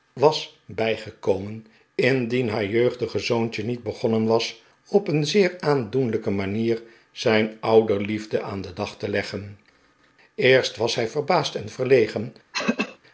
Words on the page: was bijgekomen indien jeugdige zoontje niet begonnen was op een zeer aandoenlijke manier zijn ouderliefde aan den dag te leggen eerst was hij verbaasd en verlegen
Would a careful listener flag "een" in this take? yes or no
no